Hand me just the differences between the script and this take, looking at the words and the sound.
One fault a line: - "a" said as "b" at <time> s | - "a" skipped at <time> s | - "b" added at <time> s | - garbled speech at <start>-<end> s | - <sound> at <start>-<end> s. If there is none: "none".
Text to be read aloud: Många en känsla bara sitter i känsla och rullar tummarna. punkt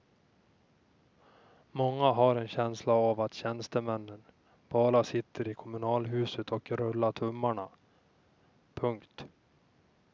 - "har" added at 2.1 s
- "av att tjänstemännen" added at 2.9 s
- "känsla" said as "kommunalhuset" at 5.5 s